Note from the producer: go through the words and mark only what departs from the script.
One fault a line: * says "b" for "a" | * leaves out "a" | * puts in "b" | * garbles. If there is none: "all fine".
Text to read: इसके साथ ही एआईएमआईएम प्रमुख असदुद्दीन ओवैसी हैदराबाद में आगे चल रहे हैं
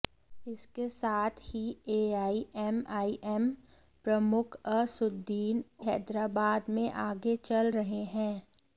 * leaves out "ओवैसी"